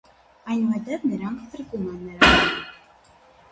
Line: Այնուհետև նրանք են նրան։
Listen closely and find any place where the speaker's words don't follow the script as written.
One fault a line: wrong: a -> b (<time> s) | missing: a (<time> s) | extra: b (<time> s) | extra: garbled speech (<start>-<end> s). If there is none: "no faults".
extra: փրկում (1.5 s)